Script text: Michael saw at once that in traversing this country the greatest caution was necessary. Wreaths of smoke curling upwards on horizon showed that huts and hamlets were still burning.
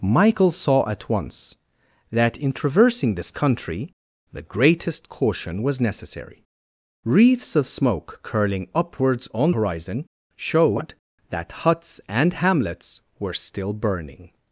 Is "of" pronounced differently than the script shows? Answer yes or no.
no